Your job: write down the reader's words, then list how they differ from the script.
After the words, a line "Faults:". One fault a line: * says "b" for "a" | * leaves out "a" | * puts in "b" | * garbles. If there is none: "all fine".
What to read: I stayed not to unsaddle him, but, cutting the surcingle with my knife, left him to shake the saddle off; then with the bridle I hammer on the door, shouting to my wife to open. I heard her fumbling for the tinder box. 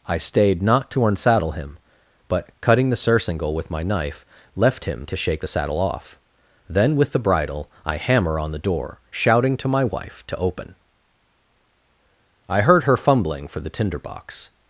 I stayed not to unsaddle him, but, cutting the surcingle with my knife, left him to shake the saddle off; then with the bridle I hammer on the door, shouting to my wife to open. I heard her fumbling for the tinder box.
Faults:
all fine